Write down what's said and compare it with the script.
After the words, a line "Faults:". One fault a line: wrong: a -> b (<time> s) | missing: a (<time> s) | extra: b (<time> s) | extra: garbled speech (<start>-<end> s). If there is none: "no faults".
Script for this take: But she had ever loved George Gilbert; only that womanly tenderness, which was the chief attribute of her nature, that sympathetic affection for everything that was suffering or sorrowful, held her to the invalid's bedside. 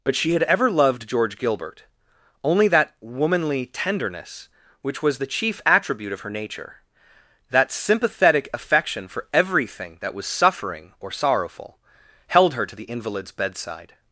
But she had ever loved George Gilbert; only that womanly tenderness, which was the chief attribute of her nature, that sympathetic affection for everything that was suffering or sorrowful, held her to the invalid's bedside.
Faults:
no faults